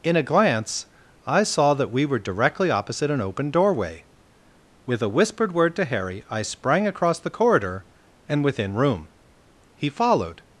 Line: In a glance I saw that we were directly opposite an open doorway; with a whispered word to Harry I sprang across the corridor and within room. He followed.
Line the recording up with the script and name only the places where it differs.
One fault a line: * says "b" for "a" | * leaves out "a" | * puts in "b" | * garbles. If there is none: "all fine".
all fine